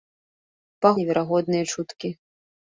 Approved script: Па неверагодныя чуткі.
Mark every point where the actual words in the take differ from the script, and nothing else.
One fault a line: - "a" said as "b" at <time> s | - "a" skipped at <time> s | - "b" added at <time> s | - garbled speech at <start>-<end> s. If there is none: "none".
none